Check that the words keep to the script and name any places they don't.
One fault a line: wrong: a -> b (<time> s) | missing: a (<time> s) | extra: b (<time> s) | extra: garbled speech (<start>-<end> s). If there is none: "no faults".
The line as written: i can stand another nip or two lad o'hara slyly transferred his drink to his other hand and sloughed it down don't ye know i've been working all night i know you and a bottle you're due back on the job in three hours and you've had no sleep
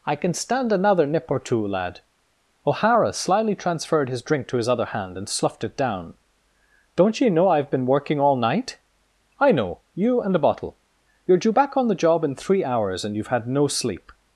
no faults